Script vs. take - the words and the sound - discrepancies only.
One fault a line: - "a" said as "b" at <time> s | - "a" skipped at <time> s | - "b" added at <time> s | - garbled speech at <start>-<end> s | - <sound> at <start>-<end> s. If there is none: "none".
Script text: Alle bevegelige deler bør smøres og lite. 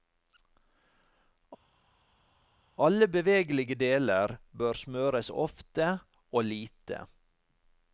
- "ofte" added at 5.3 s